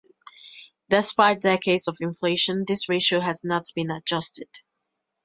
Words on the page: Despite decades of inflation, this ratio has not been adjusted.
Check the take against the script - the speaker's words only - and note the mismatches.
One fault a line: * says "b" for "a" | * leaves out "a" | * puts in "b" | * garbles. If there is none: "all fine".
all fine